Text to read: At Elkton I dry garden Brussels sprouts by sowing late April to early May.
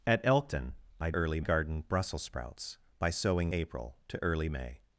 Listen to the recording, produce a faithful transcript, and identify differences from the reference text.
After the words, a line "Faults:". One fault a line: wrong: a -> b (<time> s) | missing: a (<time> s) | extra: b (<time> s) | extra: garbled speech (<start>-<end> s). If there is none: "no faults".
At Elkton I early garden Brussels sprouts by sowing April to early May.
Faults:
wrong: dry -> early (1.1 s)
missing: late (3.5 s)